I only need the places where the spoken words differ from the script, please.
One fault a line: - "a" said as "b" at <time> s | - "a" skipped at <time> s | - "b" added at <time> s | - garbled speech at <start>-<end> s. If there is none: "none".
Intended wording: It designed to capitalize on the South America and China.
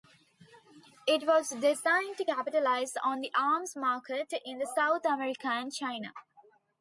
- "was" added at 1.3 s
- "arms market in" added at 3.3 s